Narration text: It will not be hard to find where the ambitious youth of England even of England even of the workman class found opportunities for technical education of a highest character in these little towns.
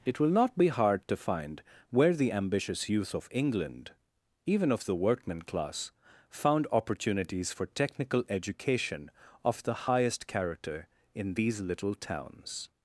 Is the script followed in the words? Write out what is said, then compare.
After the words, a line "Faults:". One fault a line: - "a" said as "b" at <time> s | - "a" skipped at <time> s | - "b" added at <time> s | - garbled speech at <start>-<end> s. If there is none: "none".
It will not be hard to find where the ambitious youth of England even of the workman class found opportunities for technical education of the highest character in these little towns.
Faults:
- "England even of" skipped at 4.9 s
- "a" said as "the" at 9.6 s